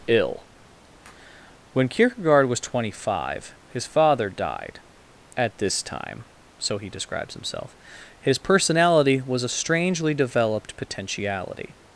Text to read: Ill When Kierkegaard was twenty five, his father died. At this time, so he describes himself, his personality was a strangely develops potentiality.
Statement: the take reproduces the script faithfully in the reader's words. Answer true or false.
false